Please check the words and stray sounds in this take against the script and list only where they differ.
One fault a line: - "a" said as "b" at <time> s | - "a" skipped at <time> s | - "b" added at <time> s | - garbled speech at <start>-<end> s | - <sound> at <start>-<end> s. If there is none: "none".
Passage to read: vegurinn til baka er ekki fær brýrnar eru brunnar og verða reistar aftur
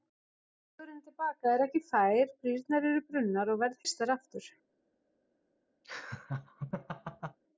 - laugh at 5.8-7.4 s